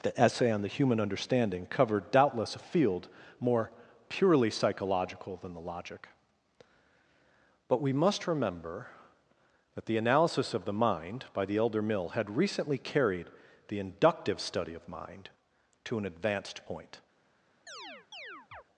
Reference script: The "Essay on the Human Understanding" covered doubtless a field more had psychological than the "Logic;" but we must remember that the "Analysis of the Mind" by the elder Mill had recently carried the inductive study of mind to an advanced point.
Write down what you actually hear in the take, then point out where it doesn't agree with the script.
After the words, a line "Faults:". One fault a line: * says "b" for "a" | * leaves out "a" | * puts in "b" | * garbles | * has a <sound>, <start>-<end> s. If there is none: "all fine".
The "Essay on the Human Understanding" covered doubtless a field more purely psychological than the "Logic;" but we must remember that the "Analysis of the Mind" by the elder Mill had recently carried the inductive study of mind to an advanced point.
Faults:
* says "purely" for "had"
* has a chirp, 17.7-18.6 s